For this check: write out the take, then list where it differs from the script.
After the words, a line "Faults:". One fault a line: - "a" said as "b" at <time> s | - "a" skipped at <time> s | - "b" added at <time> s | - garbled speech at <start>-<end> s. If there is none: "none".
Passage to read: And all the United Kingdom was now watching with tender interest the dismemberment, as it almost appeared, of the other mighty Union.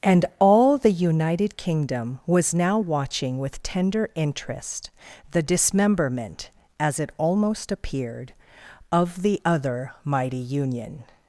And all the United Kingdom was now watching with tender interest the dismemberment, as it almost appeared, of the other mighty Union.
Faults:
none